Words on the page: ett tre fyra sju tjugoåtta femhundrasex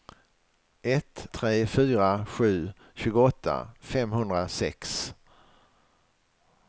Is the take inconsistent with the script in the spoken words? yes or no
no